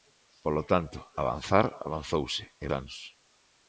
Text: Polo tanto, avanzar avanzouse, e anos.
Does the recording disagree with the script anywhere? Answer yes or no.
no